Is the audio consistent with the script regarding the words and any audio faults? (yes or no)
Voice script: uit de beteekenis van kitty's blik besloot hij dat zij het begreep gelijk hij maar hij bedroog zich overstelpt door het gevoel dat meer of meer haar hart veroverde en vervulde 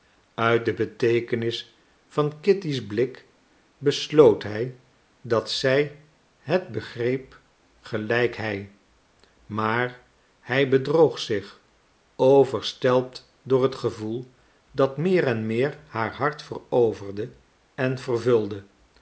no